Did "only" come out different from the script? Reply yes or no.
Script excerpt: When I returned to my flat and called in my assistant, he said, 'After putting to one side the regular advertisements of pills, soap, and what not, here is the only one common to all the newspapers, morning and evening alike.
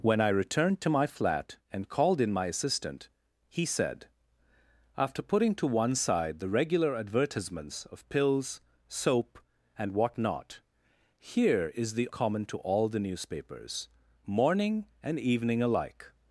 yes